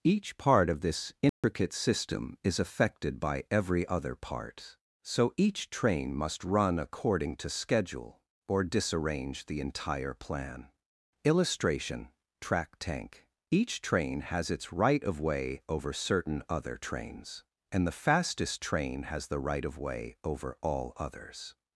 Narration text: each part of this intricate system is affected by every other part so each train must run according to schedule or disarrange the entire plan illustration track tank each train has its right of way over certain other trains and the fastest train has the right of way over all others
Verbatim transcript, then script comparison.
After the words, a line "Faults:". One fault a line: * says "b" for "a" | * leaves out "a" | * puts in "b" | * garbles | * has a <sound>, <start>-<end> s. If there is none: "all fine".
each part of this intricate system is affected by every other part so each train must run according to schedule or disarrange the entire plan illustration track tank each train has its right of way over certain other trains and the fastest train has the right of way over all others
Faults:
* has a dropout, 1.3-1.4 s